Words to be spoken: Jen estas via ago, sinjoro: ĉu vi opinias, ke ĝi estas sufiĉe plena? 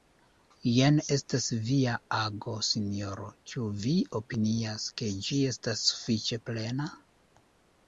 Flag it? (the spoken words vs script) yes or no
no